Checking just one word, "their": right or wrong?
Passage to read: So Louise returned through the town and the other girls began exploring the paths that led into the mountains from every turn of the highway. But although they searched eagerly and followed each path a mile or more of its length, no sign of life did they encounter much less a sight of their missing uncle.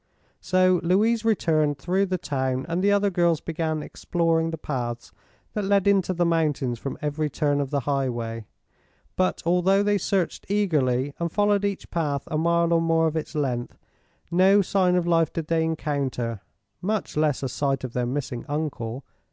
right